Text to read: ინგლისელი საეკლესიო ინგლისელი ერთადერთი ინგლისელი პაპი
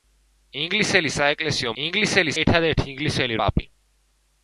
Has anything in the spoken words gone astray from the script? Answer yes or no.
no